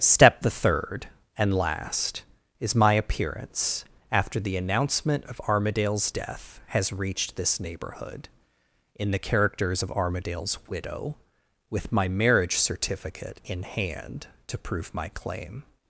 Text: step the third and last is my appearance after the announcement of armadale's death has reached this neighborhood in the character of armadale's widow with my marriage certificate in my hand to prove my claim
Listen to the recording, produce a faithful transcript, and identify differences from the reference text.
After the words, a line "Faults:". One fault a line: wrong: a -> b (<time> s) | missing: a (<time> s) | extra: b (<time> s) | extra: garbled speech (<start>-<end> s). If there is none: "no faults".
step the third and last is my appearance after the announcement of armadale's death has reached this neighborhood in the characters of armadale's widow with my marriage certificate in hand to prove my claim
Faults:
wrong: character -> characters (9.2 s)
missing: my (13.6 s)